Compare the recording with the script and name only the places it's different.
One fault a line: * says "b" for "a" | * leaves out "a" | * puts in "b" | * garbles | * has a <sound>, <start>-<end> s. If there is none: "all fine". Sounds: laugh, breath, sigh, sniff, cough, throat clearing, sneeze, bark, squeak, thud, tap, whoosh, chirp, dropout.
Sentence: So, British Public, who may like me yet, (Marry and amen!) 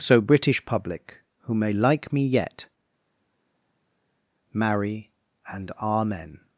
all fine